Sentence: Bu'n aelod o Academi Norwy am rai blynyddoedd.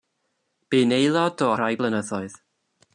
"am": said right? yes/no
no